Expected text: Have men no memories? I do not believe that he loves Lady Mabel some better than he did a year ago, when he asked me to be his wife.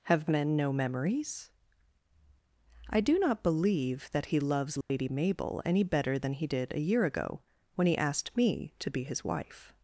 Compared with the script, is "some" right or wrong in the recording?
wrong